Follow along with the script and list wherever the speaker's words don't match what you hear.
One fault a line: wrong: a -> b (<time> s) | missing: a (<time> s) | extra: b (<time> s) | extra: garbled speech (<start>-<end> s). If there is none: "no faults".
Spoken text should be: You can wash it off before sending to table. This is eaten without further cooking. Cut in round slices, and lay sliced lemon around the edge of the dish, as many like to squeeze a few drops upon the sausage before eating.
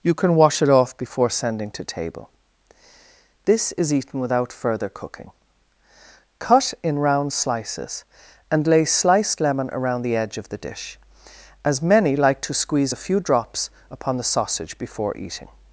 no faults